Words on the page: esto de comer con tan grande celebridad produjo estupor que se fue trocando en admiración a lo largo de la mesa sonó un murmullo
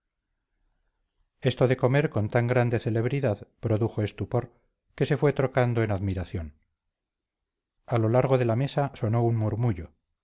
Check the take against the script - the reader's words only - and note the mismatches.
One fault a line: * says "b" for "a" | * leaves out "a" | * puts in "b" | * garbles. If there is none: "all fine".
all fine